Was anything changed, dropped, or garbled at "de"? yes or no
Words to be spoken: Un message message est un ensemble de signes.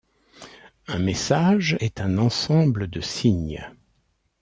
no